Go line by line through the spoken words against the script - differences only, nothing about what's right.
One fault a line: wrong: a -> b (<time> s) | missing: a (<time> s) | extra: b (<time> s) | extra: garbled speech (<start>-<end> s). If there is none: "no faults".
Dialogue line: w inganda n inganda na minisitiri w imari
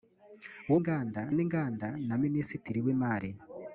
no faults